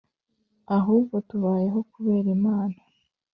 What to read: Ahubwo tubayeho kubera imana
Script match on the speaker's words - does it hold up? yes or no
yes